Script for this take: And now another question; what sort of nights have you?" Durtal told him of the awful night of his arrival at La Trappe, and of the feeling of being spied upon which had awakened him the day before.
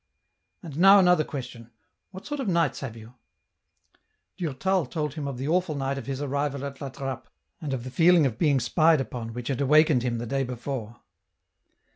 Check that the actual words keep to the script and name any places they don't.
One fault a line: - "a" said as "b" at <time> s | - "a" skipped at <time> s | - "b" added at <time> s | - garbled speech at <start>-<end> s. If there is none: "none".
none